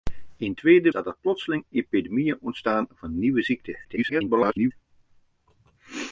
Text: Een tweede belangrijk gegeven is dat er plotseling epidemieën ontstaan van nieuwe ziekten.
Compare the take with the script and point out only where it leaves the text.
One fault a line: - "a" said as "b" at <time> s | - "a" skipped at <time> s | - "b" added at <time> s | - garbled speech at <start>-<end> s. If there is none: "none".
- "belangrijk gegeven is" skipped at 0.9 s
- garbled speech at 3.8-4.7 s